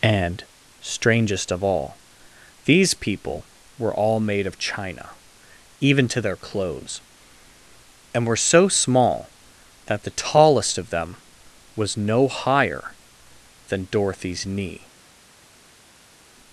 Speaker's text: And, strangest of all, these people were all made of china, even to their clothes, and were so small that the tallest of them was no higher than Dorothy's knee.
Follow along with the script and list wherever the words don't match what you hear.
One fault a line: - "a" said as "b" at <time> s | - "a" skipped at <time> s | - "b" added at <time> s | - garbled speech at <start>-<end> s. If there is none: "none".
none